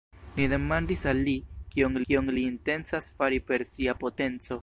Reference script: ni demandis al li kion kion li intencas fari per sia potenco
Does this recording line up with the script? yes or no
yes